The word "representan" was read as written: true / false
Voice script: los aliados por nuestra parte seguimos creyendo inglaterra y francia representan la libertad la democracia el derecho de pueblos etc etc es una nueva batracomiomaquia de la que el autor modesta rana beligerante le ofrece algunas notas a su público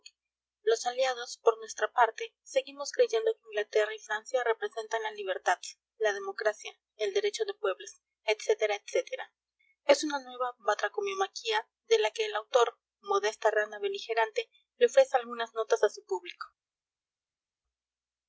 true